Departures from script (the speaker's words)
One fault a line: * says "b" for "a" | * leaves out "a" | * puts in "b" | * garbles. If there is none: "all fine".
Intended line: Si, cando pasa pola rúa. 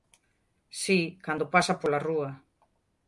all fine